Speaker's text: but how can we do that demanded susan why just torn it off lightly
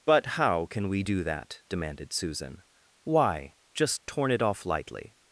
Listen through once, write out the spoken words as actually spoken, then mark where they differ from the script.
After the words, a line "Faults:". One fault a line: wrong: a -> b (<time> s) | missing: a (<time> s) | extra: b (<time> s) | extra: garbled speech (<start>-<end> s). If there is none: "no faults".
but how can we do that demanded susan why just torn it off lightly
Faults:
no faults